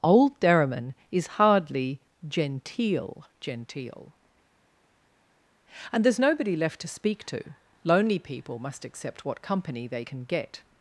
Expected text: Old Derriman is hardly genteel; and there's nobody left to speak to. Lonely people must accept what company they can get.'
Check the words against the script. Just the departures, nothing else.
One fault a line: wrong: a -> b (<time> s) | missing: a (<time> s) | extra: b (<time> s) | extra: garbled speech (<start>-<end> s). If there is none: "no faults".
extra: genteel (3.4 s)